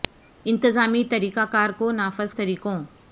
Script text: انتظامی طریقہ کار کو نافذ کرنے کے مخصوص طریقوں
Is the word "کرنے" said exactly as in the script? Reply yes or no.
no